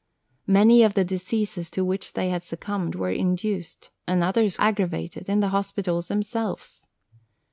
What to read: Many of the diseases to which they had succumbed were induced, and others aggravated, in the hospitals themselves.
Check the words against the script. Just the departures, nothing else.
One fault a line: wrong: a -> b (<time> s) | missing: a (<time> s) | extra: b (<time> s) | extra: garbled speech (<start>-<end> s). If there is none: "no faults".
no faults